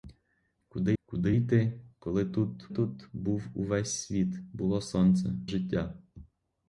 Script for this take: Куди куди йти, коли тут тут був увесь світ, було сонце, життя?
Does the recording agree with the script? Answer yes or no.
yes